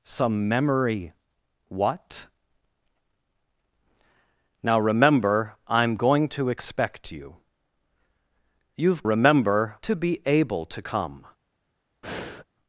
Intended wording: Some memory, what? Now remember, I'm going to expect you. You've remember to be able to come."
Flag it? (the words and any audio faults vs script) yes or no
yes